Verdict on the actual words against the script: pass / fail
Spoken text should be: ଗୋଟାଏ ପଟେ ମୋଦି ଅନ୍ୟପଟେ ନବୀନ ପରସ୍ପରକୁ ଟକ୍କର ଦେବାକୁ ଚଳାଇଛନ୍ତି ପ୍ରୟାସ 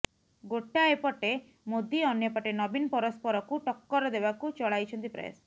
pass